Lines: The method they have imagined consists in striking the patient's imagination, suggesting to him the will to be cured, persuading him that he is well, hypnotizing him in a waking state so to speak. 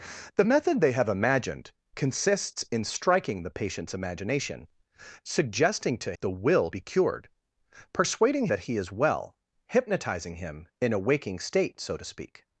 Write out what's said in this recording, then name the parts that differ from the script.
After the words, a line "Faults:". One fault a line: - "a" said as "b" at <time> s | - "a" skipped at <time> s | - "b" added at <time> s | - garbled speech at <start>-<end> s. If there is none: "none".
The method they have imagined consists in striking the patient's imagination, suggesting to the will be cured, persuading that he is well, hypnotizing him in a waking state so to speak.
Faults:
- "him" skipped at 6.2 s
- "to" skipped at 6.7 s
- "him" skipped at 8.5 s